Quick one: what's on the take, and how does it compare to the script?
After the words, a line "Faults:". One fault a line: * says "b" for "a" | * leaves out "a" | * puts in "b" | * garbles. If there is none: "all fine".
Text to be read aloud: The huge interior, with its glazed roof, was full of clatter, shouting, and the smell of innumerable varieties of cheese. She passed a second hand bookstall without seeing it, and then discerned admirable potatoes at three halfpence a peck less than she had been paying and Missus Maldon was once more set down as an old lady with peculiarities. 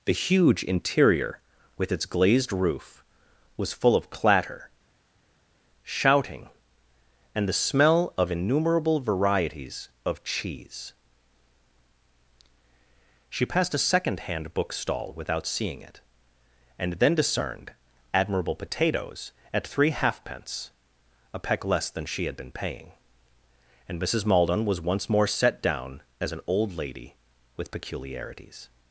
The huge interior, with its glazed roof, was full of clatter, shouting, and the smell of innumerable varieties of cheese. She passed a second hand bookstall without seeing it, and then discerned admirable potatoes at three halfpence a peck less than she had been paying and Missus Maldon was once more set down as an old lady with peculiarities.
Faults:
all fine